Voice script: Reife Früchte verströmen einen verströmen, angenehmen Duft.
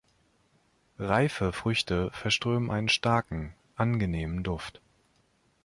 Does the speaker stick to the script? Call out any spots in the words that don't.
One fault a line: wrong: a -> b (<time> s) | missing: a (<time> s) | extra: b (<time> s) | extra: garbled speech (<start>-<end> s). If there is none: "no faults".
wrong: verströmen -> starken (2.9 s)